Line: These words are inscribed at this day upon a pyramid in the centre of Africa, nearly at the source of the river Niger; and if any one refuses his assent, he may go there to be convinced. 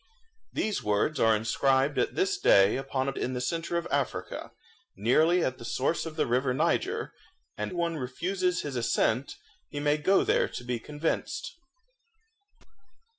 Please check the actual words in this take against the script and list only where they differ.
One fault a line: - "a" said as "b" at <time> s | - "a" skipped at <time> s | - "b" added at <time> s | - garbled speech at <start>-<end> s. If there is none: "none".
- "pyramid" skipped at 3.1 s
- "if any" skipped at 7.7 s